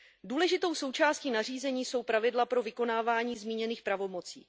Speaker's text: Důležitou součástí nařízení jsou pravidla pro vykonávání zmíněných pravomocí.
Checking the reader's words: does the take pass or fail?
pass